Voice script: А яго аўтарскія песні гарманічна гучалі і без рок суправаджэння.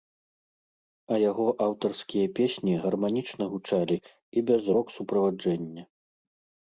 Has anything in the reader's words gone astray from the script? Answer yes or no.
no